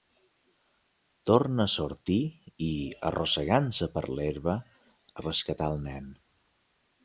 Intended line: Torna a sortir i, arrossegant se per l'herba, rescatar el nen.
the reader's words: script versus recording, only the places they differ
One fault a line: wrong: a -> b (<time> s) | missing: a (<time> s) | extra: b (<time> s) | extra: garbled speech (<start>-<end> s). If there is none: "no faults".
no faults